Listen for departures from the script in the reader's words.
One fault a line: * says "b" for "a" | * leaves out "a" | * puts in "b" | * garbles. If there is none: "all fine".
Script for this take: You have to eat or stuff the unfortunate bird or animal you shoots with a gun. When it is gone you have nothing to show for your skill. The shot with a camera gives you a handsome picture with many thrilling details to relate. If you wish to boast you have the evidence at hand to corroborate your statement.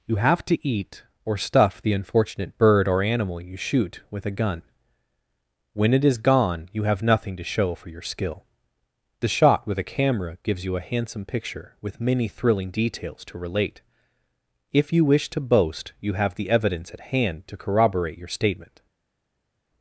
* says "shoot" for "shoots"